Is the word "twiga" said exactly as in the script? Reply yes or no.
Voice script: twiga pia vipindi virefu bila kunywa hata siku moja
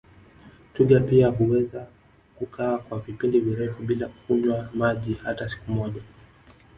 yes